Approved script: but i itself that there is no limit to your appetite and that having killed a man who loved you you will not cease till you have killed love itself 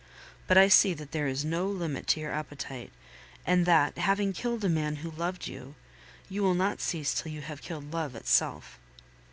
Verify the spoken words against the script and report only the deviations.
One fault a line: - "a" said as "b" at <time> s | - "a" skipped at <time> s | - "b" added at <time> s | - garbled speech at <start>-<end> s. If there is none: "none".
- "itself" said as "see" at 0.7 s